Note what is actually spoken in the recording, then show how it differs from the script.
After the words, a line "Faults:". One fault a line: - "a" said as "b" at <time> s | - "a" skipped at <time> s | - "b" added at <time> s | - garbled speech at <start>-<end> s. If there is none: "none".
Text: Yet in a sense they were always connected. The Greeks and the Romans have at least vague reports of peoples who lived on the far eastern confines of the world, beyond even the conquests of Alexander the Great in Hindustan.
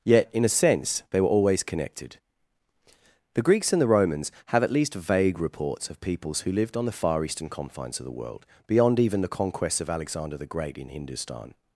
Yet in a sense they were always connected. The Greeks and the Romans have at least vague reports of peoples who lived on the far eastern confines of the world, beyond even the conquests of Alexander the Great in Hindustan.
Faults:
none